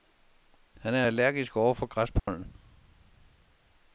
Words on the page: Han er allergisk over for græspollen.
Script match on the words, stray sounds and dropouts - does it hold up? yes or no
no